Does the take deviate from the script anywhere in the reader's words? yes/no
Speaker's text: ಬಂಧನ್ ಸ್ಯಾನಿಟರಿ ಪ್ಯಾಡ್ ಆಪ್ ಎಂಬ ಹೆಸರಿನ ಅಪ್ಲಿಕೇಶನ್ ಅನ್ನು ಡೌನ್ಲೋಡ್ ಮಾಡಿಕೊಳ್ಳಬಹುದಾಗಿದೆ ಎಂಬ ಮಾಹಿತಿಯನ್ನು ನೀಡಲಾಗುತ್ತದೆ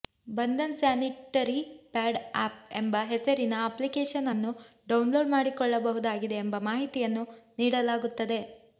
no